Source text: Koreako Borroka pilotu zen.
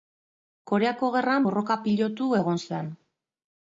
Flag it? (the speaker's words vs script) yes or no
yes